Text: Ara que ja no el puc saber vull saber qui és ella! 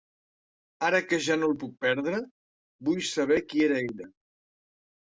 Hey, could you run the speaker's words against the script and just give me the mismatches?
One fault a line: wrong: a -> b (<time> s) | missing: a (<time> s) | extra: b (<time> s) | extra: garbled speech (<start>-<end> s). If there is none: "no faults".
wrong: saber -> perdre (1.9 s)
wrong: és -> era (3.7 s)